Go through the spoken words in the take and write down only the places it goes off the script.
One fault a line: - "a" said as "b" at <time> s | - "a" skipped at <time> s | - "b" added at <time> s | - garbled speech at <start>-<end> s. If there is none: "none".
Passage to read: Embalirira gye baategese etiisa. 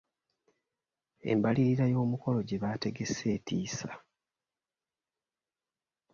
- "y'omukolo" added at 1.9 s